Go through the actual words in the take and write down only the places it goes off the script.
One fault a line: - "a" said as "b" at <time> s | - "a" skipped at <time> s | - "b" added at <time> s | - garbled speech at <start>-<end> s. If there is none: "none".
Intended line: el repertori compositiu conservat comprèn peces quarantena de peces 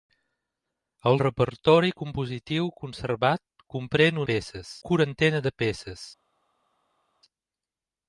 none